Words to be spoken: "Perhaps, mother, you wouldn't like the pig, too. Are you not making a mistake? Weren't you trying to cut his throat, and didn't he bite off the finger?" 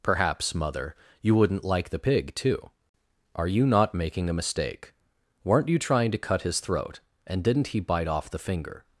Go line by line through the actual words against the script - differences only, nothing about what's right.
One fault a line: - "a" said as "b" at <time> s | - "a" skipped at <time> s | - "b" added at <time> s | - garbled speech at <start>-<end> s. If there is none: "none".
none